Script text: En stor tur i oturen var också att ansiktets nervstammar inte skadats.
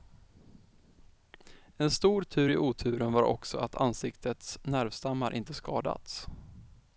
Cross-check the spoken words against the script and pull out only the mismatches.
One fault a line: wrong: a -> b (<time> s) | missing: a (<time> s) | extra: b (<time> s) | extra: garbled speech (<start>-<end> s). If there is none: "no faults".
no faults